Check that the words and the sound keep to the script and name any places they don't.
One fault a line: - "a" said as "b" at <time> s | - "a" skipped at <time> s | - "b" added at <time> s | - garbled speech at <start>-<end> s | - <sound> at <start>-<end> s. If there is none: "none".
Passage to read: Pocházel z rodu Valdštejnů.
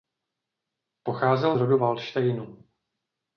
none